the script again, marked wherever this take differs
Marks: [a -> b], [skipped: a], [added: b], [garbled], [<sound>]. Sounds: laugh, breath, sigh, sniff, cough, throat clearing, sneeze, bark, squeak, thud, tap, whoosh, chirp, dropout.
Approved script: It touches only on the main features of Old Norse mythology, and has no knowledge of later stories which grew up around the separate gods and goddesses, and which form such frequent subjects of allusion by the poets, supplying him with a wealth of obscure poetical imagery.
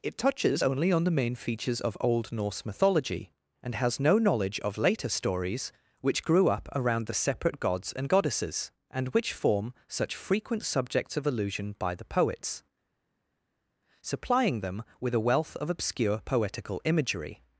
It touches only on the main features of Old Norse mythology, and has no knowledge of later stories which grew up around the separate gods and goddesses, and which form such frequent subjects of allusion by the poets, supplying [him -> them] with a wealth of obscure poetical imagery.